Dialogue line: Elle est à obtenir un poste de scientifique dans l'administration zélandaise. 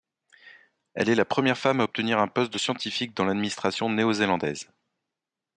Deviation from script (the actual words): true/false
true